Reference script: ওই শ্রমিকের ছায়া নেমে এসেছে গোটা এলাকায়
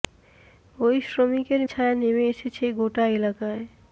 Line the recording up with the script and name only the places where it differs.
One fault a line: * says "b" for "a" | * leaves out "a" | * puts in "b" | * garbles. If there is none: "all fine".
all fine